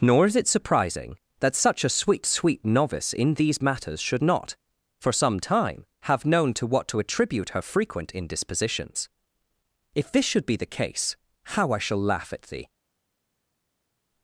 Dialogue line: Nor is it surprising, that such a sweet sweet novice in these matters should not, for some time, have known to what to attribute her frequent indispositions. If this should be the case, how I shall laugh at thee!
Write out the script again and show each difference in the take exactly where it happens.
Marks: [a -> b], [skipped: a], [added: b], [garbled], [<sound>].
Nor is it surprising, that such a sweet sweet novice in these matters should not, for some time, have known to what to attribute her frequent indispositions. If this should be the case, how I shall laugh at thee!